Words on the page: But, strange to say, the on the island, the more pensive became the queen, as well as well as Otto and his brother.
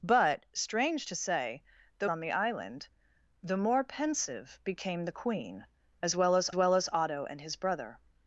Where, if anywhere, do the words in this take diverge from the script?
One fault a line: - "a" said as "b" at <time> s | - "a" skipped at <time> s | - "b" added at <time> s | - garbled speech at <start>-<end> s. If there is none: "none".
none